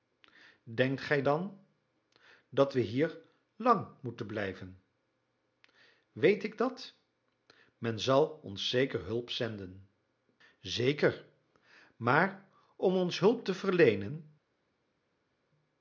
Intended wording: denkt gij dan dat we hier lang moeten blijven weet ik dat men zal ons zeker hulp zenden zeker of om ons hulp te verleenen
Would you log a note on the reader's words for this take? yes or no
yes